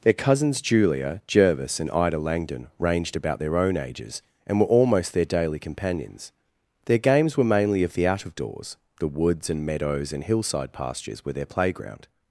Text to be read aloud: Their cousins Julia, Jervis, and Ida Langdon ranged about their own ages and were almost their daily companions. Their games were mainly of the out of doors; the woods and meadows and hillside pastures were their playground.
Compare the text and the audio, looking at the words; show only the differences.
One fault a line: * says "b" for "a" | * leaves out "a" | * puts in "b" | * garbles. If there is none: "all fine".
all fine